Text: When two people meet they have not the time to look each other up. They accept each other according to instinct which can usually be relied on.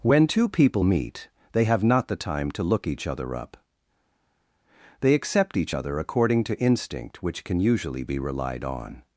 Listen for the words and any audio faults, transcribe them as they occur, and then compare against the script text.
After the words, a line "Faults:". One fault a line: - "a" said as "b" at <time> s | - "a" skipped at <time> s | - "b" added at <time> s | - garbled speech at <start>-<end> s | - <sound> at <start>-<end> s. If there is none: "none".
When two people meet they have not the time to look each other up. They accept each other according to instinct which can usually be relied on.
Faults:
none